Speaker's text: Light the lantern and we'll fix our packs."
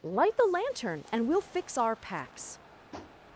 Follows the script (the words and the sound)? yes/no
no